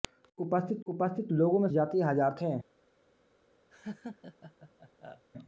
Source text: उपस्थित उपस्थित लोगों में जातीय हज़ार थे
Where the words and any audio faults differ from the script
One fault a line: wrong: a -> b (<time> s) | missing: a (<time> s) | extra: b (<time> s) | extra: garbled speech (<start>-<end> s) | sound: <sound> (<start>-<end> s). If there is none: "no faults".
sound: laugh (3.7-5.2 s)